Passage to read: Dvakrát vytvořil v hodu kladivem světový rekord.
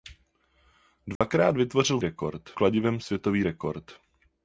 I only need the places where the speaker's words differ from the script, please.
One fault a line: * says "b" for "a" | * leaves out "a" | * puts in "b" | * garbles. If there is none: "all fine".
* says "rekord" for "hodu"